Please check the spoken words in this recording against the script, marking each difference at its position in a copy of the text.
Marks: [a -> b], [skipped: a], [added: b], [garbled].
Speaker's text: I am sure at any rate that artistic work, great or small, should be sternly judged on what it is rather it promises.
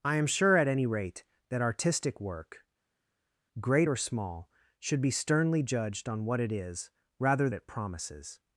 I am sure at any rate that artistic work, great or small, should be sternly judged on what it is rather it promises.